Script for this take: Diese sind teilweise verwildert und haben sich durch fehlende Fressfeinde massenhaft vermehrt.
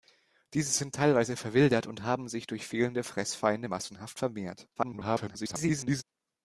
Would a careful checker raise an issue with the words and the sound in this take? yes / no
yes